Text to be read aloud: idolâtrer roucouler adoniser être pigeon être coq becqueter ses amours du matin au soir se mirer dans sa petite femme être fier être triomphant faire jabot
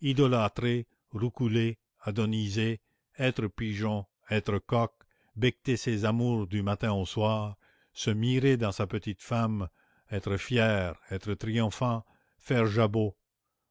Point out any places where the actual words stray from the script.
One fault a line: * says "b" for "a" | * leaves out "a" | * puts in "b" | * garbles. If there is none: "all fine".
all fine